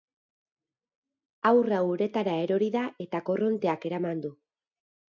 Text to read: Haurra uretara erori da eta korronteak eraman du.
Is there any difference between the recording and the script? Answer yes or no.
no